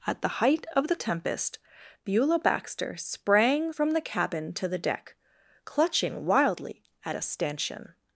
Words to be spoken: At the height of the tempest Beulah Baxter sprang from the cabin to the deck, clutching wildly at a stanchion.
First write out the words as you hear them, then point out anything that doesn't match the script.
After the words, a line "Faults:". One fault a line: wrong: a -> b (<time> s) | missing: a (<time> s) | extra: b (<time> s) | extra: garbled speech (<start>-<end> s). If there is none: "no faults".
At the height of the tempest Beulah Baxter sprang from the cabin to the deck, clutching wildly at a stanchion.
Faults:
no faults